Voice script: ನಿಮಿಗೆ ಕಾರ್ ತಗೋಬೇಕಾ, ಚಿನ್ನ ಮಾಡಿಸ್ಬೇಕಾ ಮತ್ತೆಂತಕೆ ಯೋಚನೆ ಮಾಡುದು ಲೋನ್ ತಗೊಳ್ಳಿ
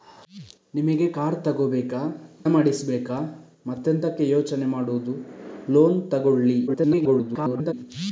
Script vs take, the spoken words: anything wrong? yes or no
yes